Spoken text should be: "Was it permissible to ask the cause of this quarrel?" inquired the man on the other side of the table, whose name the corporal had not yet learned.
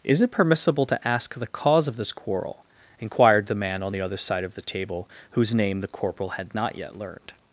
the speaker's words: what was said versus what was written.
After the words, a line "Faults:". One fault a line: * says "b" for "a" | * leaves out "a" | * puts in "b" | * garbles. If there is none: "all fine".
"Is it permissible to ask the cause of this quarrel?" inquired the man on the other side of the table, whose name the corporal had not yet learned.
Faults:
* says "Is" for "Was"